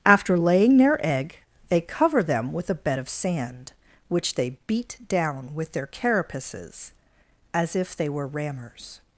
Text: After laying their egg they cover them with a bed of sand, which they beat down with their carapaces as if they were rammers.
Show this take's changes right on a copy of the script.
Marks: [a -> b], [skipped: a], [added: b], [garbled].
After laying their egg they cover them with a bed of sand, which they beat down with their carapaces as if they were rammers.